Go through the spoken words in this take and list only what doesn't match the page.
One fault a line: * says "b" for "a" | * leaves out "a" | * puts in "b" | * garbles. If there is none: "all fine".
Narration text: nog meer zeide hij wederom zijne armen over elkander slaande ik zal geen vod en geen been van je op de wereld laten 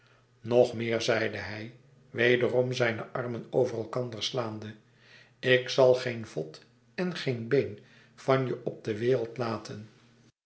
all fine